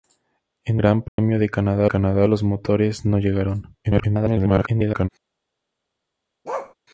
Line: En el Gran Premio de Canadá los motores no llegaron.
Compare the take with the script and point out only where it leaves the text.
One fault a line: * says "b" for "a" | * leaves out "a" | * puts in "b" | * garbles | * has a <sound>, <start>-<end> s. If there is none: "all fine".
* leaves out "el"
* has a dropout, 1.1-1.2 s
* puts in "Canadá"
* garbles
* has a bark, 6.4-6.7 s